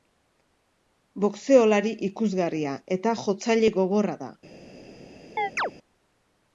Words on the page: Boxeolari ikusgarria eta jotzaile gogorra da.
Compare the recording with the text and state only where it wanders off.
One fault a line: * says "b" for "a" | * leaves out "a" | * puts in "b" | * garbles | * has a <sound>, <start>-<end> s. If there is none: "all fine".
* has a chirp, 5.4-5.7 s